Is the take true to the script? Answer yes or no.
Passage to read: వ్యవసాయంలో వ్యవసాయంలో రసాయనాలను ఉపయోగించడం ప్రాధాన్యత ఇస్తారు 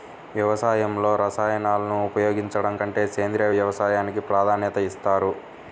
no